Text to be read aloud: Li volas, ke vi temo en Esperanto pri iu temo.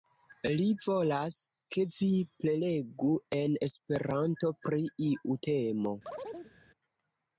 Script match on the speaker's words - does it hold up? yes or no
no